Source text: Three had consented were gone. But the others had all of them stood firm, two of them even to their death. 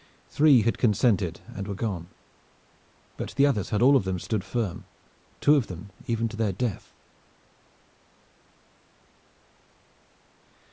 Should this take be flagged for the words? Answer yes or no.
yes